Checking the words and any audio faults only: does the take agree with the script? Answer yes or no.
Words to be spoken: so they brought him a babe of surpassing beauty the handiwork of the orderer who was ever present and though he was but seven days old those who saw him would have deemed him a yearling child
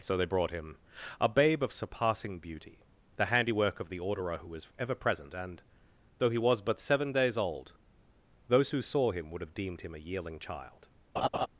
no